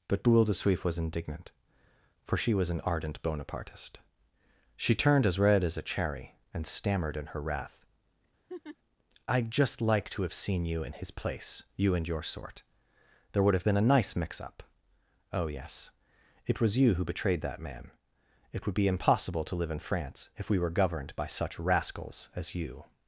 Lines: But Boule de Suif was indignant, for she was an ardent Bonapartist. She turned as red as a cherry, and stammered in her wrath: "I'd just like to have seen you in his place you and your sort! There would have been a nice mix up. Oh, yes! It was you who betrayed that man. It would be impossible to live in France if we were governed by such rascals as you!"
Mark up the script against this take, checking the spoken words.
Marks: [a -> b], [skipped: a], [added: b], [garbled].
But Boule de Suif was indignant, for she was an ardent Bonapartist. She turned as red as a cherry, and stammered in her wrath: "I'd just like to have seen you in his place you and your sort! There would have been a nice mix up. Oh, yes! It was you who betrayed that man. It would be impossible to live in France if we were governed by such rascals as you!"